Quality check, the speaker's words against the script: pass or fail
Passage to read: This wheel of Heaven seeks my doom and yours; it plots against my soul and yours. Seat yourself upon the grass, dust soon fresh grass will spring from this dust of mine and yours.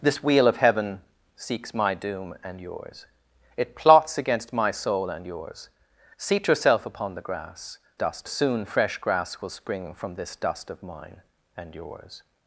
pass